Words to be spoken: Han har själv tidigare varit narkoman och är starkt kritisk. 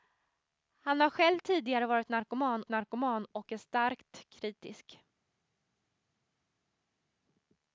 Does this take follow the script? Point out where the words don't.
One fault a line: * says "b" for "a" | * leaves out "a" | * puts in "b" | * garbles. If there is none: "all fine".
* puts in "narkoman"